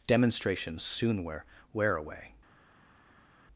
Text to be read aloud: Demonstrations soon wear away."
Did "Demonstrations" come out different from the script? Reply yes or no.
no